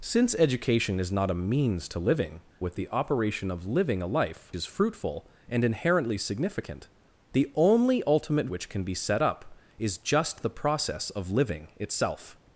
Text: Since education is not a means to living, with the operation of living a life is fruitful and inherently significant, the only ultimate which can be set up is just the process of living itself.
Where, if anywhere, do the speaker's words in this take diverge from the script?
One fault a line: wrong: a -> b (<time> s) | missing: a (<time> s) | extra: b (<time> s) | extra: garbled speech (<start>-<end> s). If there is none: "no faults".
no faults